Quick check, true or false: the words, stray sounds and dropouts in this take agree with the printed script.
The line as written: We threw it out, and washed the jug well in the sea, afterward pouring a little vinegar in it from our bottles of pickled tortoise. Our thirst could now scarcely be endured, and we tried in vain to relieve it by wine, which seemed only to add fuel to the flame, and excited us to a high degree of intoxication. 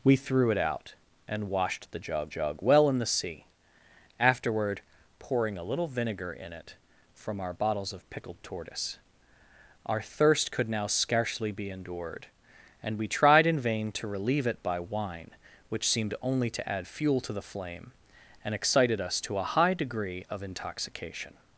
false